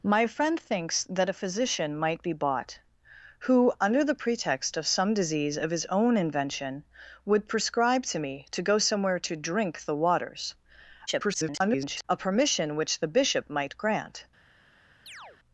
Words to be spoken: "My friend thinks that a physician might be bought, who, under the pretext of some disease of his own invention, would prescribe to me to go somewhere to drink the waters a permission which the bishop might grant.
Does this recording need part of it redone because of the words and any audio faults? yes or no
yes